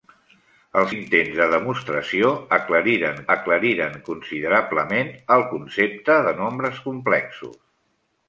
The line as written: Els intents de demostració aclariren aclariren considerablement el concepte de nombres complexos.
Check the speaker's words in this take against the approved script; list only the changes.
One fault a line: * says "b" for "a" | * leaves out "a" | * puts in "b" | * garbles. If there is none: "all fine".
all fine